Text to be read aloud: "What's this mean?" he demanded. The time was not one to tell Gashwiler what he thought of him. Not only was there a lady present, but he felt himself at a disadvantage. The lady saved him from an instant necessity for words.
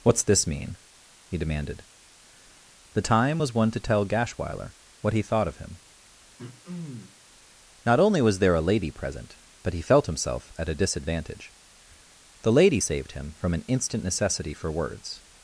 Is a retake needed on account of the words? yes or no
yes